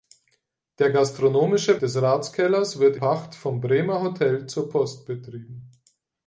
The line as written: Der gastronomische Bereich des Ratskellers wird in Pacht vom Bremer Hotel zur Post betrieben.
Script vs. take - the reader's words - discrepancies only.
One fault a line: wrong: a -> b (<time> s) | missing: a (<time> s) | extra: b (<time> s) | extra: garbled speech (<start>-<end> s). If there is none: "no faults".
missing: Bereich (1.8 s)
missing: in (3.0 s)